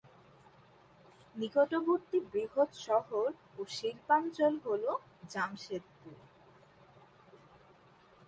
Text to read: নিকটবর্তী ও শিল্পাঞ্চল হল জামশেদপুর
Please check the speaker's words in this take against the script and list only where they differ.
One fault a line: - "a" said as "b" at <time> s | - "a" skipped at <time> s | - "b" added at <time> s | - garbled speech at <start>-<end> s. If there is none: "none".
- "বৃহৎ শহর" added at 2.3 s